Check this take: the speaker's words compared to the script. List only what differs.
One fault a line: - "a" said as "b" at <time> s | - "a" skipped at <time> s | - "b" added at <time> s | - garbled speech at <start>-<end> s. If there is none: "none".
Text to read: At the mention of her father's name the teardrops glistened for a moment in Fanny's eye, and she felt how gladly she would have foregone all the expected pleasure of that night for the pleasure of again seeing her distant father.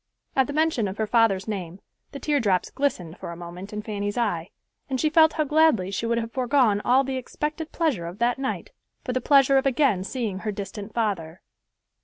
none